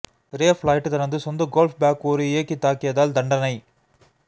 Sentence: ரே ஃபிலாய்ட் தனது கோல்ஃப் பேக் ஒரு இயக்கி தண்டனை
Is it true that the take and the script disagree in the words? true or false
true